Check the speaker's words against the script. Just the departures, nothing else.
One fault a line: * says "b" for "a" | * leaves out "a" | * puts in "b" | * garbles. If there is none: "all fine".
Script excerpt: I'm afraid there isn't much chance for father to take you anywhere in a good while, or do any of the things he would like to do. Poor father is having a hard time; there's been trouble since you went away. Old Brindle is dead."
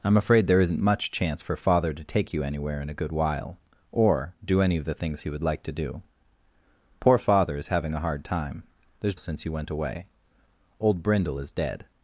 * leaves out "been trouble"